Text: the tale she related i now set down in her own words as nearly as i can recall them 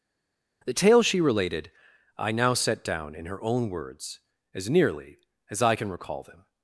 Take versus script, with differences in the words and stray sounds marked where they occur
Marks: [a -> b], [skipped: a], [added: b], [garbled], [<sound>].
the tale she related i now set down in her own words as nearly as i can recall them